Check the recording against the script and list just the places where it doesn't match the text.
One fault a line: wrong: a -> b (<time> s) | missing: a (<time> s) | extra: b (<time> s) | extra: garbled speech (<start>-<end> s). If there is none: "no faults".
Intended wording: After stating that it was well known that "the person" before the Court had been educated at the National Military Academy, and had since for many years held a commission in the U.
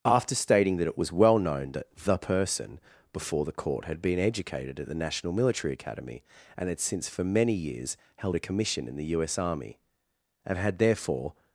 extra: S Army and had therefore (9.2 s)